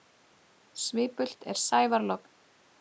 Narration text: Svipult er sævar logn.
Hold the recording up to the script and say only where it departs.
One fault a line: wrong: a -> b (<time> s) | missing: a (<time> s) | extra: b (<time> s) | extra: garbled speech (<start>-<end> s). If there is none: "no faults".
no faults